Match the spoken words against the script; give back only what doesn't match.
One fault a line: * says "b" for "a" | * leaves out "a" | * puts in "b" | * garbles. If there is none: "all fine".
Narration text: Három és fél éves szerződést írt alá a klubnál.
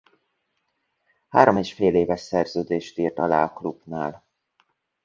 all fine